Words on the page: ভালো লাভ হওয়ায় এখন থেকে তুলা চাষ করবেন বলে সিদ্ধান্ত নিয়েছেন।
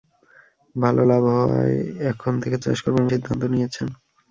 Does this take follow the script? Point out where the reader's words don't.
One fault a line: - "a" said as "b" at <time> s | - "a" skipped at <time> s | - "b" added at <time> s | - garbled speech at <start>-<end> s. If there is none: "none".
- "তুলা" skipped at 2.6 s
- "বলে" skipped at 3.1 s